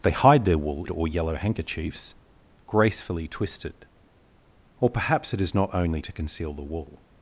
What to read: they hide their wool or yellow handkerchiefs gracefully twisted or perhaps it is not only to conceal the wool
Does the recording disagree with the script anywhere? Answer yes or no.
no